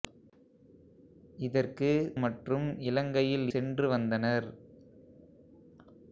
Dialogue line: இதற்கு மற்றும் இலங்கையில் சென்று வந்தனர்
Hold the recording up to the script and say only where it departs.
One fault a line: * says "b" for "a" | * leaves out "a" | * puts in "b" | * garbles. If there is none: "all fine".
all fine